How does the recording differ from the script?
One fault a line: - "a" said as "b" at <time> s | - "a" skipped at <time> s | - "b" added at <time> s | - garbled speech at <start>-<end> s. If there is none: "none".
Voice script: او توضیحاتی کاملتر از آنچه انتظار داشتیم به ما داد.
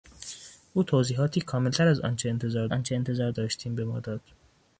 - "آنچه انتظار" added at 2.7 s